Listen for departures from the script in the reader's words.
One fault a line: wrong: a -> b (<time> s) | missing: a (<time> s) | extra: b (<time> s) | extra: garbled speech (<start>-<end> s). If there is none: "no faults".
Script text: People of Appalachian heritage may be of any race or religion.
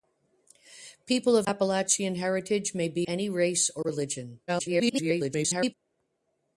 missing: of (3.1 s)
extra: garbled speech (4.5-5.7 s)